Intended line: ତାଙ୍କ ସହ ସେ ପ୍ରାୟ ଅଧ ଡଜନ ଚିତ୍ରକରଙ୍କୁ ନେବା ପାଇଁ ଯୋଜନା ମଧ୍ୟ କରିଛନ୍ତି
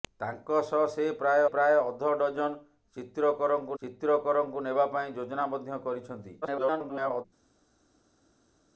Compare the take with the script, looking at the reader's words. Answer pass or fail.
fail